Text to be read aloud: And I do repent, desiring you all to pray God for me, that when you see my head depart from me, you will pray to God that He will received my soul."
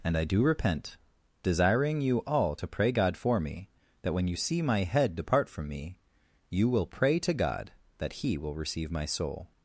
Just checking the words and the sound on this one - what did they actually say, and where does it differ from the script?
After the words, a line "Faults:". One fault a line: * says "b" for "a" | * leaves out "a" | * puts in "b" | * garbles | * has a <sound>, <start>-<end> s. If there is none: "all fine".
And I do repent, desiring you all to pray God for me, that when you see my head depart from me, you will pray to God that He will receive my soul."
Faults:
* says "receive" for "received"